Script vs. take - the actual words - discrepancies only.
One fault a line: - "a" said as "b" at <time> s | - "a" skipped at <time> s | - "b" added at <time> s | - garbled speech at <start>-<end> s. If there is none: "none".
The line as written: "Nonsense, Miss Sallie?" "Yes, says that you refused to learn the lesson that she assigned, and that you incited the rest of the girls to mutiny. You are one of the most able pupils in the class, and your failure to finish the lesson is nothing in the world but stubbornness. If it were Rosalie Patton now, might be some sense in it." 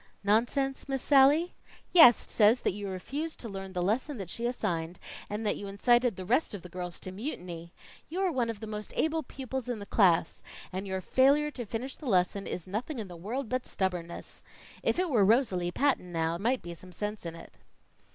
none